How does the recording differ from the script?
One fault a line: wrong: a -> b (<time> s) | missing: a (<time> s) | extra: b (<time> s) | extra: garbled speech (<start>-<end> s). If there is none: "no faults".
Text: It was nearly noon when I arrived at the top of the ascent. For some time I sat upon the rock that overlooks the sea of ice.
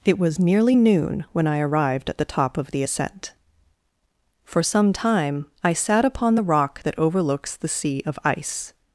no faults